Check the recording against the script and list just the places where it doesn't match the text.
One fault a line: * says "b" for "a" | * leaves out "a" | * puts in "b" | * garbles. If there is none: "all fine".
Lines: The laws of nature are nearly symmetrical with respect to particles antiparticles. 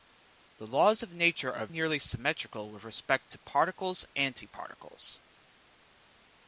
all fine